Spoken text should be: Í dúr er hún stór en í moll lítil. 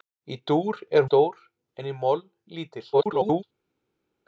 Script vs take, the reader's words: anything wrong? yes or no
yes